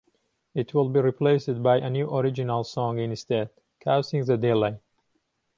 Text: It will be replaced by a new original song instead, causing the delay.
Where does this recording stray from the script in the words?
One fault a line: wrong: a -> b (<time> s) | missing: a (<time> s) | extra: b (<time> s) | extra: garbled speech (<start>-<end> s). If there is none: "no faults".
no faults